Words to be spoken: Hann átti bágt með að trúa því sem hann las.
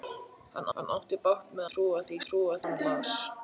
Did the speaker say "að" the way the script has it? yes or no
no